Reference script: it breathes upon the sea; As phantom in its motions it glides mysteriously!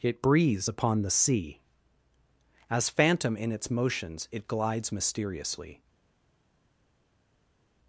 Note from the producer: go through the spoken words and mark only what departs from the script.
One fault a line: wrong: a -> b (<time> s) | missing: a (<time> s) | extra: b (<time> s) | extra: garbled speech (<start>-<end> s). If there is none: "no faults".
no faults